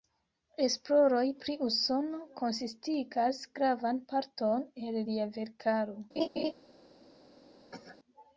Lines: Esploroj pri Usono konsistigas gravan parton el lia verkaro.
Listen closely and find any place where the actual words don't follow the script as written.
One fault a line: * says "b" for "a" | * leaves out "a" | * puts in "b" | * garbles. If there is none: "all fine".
all fine